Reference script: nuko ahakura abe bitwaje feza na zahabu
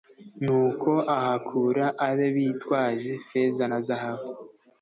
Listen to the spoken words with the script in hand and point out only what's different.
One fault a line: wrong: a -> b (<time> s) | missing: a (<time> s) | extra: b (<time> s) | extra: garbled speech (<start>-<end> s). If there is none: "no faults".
no faults